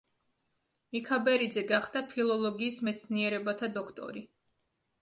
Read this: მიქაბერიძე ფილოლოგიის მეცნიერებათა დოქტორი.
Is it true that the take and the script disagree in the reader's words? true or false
true